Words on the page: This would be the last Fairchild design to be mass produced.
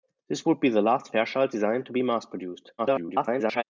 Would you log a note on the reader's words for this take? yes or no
yes